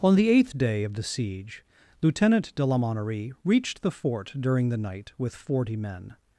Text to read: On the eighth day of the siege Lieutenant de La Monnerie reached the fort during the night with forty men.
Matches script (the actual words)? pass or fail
pass